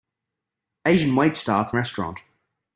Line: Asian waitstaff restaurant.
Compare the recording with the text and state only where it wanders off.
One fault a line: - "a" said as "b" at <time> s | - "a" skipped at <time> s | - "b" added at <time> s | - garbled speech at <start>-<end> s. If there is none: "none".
none